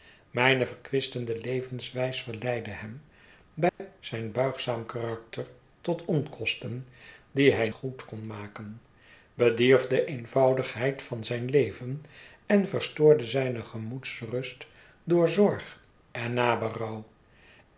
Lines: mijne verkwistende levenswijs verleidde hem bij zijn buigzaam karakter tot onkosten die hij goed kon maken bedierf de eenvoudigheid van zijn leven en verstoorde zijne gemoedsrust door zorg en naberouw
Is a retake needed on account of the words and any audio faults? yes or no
yes